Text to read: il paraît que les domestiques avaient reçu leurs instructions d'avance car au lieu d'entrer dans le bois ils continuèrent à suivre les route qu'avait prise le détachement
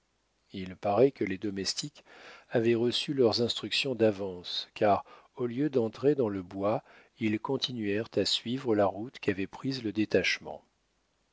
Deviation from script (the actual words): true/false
true